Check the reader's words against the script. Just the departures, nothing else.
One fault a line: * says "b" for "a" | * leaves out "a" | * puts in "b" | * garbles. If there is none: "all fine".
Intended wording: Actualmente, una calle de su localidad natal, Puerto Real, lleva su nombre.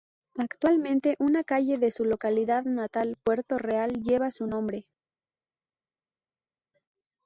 all fine